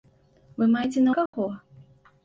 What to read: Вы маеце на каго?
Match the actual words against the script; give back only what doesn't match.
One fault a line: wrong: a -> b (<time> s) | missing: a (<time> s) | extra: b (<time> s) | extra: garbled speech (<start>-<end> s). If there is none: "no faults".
no faults